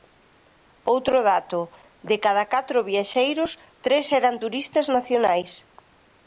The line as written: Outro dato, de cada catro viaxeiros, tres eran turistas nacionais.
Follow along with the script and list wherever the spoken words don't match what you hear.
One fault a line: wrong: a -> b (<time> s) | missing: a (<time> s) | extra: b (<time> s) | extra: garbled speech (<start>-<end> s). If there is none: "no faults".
no faults